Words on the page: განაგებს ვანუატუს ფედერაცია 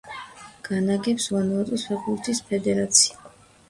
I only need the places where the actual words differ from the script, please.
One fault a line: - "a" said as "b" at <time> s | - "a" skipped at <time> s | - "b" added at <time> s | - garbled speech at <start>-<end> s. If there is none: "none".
- "ფეხბურთის" added at 1.9 s